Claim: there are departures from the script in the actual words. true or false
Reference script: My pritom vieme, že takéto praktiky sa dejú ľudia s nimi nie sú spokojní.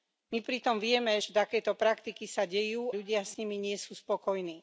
false